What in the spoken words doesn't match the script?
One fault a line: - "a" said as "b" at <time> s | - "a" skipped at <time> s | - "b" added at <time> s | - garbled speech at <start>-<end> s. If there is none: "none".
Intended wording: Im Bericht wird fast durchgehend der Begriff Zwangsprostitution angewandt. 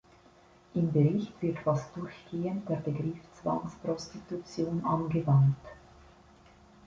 none